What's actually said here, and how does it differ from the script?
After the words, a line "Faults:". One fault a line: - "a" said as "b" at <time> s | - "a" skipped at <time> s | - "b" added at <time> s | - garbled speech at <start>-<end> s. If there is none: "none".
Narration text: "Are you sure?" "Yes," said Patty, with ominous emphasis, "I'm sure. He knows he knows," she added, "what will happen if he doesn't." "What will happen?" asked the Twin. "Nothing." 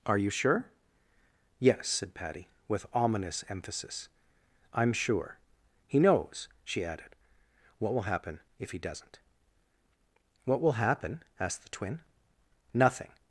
"Are you sure?" "Yes," said Patty, with ominous emphasis, "I'm sure. He knows," she added, "what will happen if he doesn't." "What will happen?" asked the Twin. "Nothing."
Faults:
- "he knows" skipped at 6.5 s